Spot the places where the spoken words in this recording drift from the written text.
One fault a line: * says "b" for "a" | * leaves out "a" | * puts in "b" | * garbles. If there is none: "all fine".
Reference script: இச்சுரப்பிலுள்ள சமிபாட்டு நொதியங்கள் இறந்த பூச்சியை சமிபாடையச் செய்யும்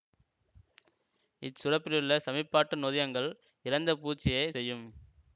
* leaves out "சமிபாடையச்"